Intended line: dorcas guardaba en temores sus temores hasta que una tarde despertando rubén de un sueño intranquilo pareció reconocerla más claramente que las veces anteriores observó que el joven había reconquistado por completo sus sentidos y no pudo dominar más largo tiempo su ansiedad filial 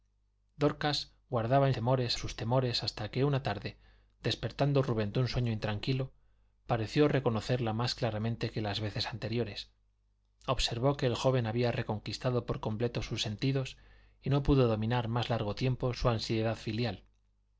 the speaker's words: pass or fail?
pass